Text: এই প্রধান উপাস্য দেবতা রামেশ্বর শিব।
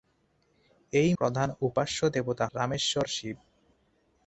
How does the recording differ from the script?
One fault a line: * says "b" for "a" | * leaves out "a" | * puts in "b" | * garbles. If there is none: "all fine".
all fine